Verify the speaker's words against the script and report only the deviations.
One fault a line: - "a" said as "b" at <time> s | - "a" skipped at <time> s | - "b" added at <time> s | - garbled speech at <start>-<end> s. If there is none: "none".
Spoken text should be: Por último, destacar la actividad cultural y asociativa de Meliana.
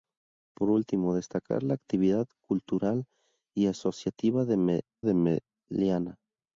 - "de" added at 5.0 s